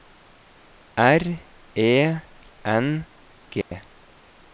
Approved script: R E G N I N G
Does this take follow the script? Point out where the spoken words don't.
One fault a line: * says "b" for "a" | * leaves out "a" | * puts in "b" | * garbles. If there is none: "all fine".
* leaves out "G N I"